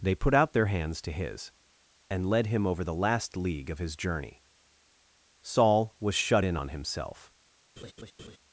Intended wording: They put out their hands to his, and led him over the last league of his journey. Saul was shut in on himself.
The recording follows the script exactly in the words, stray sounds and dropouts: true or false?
false